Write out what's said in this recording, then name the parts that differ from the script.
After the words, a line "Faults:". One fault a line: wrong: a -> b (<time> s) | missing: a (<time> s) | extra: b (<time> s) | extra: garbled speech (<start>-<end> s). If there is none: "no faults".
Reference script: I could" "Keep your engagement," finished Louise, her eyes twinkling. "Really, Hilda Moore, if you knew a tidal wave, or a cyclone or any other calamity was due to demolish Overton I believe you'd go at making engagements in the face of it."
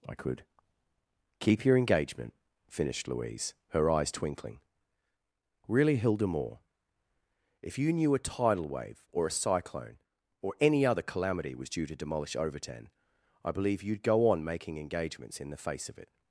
I could" "Keep your engagement," finished Louise, her eyes twinkling. "Really, Hilda Moore, if you knew a tidal wave, or a cyclone or any other calamity was due to demolish Overton I believe you'd go on making engagements in the face of it."
Faults:
wrong: at -> on (14.3 s)